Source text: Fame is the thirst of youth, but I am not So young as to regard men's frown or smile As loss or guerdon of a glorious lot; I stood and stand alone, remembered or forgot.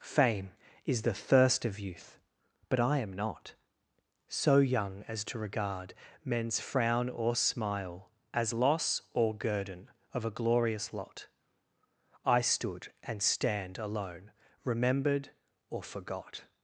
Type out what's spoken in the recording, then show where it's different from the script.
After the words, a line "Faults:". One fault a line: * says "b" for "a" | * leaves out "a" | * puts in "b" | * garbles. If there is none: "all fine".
Fame is the thirst of youth, but I am not So young as to regard men's frown or smile As loss or guerdon of a glorious lot; I stood and stand alone, remembered or forgot.
Faults:
all fine